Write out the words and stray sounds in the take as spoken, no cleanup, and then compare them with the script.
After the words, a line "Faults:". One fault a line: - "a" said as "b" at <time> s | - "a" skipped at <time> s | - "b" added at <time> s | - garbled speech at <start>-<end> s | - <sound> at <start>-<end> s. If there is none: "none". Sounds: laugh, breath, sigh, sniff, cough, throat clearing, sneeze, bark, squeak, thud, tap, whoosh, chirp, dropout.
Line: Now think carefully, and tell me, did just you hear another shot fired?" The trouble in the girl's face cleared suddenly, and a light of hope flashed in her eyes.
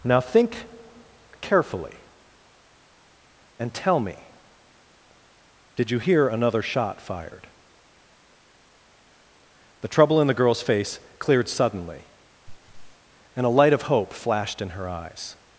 Now think carefully, and tell me, did you hear another shot fired?" The trouble in the girl's face cleared suddenly, and a light of hope flashed in her eyes.
Faults:
- "just" skipped at 5.9 s
- laugh at 12.5-13.0 s